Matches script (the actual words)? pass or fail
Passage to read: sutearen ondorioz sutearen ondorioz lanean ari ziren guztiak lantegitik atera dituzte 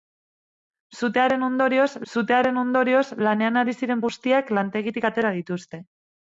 pass